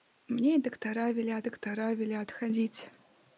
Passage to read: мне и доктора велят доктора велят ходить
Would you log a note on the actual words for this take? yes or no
no